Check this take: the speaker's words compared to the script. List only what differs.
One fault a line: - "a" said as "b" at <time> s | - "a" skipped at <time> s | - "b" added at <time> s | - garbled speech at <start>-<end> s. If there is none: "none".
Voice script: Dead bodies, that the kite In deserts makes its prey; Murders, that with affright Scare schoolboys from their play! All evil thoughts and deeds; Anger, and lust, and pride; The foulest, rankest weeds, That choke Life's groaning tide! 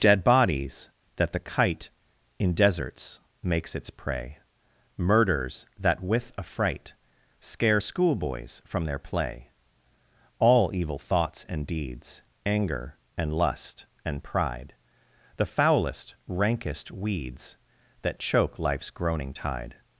none